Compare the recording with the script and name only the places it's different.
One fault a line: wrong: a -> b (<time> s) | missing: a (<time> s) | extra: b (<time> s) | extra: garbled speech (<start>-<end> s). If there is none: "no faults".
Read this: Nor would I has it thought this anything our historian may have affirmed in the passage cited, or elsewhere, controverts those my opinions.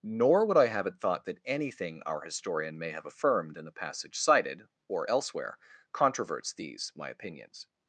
wrong: has -> have (0.7 s)
wrong: this -> that (1.2 s)
wrong: those -> these (6.5 s)